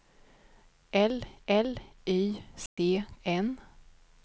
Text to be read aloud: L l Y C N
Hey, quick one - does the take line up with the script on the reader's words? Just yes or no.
yes